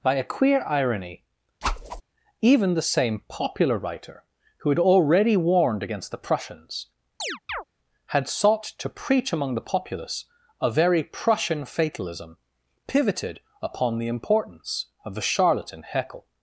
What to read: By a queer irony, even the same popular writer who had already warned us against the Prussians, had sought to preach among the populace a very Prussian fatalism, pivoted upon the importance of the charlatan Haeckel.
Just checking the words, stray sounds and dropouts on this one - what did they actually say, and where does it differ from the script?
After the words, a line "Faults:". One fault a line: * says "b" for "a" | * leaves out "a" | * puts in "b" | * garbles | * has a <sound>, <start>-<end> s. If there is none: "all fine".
By a queer irony, even the same popular writer who had already warned against the Prussians, had sought to preach among the populace a very Prussian fatalism, pivoted upon the importance of the charlatan Haeckel.
Faults:
* has a whoosh, 1.6-2.0 s
* leaves out "us"
* has a chirp, 7.2-7.6 s